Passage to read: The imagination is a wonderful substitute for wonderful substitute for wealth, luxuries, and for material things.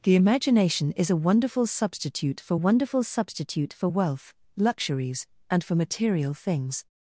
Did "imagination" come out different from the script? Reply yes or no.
no